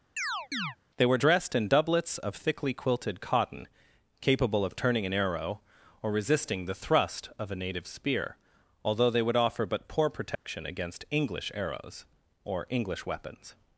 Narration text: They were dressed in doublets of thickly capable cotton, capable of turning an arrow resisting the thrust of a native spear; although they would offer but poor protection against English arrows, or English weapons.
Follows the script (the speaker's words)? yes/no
no